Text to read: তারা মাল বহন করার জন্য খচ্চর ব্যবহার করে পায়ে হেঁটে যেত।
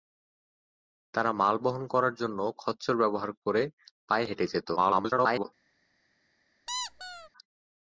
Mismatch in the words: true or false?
true